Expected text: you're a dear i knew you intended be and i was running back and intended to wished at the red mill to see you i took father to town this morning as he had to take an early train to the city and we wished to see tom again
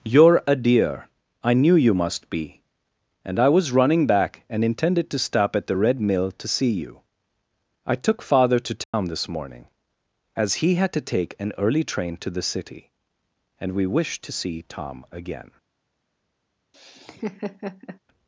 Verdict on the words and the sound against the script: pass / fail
fail